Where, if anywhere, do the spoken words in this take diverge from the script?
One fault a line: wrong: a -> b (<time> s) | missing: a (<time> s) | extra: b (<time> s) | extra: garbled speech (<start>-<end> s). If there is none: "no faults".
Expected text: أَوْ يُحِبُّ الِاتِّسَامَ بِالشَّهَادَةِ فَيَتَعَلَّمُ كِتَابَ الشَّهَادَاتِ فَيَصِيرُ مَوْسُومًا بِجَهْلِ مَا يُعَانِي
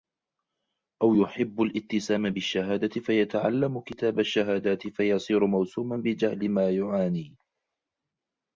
no faults